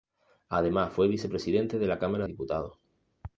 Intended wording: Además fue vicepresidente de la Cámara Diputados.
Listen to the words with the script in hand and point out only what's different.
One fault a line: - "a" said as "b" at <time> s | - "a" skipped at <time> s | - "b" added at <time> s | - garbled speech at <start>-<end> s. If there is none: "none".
none